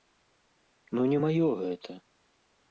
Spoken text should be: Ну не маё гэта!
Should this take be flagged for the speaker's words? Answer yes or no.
no